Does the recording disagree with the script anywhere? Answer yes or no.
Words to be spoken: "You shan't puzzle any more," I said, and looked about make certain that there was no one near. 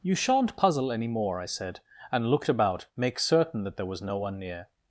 no